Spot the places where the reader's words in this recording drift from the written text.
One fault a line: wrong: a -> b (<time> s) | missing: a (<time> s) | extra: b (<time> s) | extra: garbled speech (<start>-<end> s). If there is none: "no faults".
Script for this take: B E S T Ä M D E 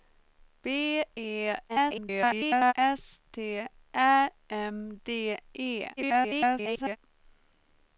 extra: garbled speech (1.7-2.7 s)
extra: garbled speech (6.0-7.0 s)